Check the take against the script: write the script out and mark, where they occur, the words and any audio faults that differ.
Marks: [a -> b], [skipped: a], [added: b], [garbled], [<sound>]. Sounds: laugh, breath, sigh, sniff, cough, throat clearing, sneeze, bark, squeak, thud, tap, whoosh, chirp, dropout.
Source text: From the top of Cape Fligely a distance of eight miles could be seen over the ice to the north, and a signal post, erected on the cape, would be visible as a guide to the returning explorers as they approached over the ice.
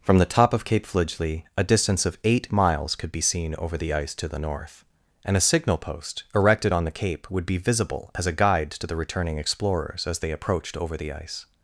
From the top of Cape Fligely a distance of eight miles could be seen over the ice to the north, and a signal post, erected on the cape, would be visible as a guide to the returning explorers as they approached over the ice.